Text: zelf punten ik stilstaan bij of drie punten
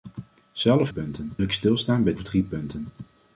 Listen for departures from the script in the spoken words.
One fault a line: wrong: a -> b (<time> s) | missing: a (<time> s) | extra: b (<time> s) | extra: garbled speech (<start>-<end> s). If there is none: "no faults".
no faults